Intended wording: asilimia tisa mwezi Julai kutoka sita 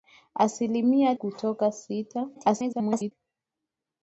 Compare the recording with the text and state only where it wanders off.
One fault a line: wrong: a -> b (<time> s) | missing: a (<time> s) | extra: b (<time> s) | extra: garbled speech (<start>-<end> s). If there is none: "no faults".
missing: tisa mwezi Julai (1.1 s)
extra: garbled speech (2.3-3.1 s)